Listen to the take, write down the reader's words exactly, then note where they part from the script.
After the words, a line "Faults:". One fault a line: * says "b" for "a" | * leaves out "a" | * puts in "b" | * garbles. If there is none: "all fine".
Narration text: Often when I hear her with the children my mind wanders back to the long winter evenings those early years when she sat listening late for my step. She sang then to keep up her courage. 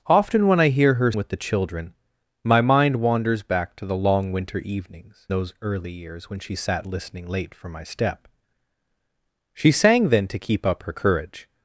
Often when I hear her with the children my mind wanders back to the long winter evenings those early years when she sat listening late for my step. She sang then to keep up her courage.
Faults:
all fine